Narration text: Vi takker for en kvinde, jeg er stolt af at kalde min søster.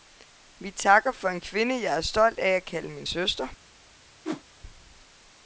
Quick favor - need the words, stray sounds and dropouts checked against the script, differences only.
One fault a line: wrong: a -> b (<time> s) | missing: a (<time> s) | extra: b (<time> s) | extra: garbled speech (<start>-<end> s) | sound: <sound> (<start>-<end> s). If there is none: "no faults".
sound: whoosh (4.2-4.4 s)